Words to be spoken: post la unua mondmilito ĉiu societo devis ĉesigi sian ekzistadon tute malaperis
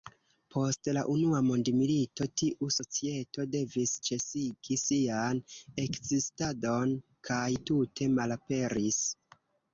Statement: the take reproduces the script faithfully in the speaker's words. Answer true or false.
false